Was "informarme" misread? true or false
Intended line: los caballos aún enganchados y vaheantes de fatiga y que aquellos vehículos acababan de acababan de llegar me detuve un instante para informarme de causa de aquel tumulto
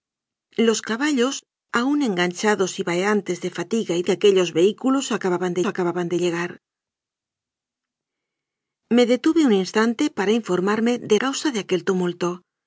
false